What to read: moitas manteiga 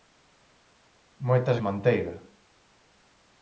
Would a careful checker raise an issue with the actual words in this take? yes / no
no